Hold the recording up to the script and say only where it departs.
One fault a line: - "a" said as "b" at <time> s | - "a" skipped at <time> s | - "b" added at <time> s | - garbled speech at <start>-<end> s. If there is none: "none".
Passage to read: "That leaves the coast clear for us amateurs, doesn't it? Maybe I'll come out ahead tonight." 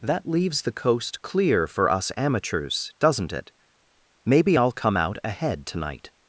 none